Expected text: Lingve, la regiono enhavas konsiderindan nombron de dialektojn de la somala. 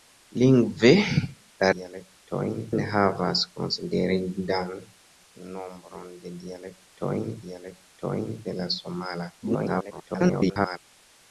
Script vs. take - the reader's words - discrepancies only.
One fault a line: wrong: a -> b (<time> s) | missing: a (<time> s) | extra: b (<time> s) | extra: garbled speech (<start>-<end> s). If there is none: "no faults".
wrong: regiono -> dialektojn (1.8 s)
extra: dialektojn (7.5 s)
extra: garbled speech (9.4-10.8 s)